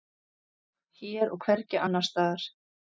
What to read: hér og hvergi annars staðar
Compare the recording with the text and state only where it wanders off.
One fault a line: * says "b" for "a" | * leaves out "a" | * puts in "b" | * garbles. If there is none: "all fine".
all fine